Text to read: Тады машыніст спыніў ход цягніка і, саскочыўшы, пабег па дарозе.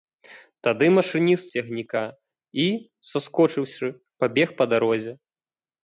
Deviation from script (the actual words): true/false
true